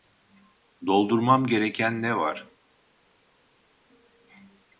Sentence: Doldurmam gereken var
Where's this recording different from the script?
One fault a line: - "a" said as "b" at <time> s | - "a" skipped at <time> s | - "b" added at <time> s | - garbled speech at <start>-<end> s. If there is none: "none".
- "ne" added at 2.0 s